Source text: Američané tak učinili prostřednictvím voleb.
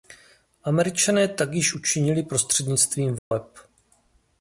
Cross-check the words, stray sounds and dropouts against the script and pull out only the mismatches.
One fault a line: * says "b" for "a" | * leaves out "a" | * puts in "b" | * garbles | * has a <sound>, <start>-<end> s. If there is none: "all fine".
* puts in "již"
* has a dropout, 3.2-3.3 s